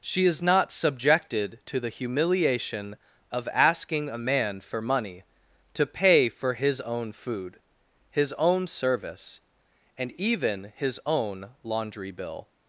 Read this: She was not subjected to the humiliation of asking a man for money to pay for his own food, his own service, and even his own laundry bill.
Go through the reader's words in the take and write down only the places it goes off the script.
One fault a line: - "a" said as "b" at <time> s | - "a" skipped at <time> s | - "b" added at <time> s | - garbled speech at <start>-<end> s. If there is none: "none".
- "was" said as "is" at 0.2 s